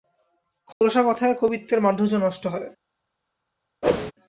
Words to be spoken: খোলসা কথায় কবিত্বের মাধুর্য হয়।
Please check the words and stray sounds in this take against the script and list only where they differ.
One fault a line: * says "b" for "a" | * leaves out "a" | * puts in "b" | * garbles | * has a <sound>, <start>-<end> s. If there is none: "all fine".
* has a dropout, 0.7-0.8 s
* puts in "নষ্ট"
* has a whoosh, 3.8-4.1 s